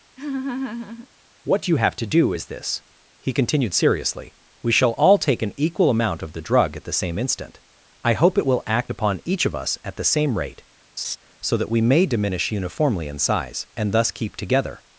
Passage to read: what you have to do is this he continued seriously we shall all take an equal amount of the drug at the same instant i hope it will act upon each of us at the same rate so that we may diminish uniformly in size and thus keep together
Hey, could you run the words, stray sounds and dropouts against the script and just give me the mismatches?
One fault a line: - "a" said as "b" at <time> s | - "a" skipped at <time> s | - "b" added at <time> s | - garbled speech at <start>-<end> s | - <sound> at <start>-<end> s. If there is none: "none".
- laugh at 0.2-1.1 s
- laugh at 11.0-11.2 s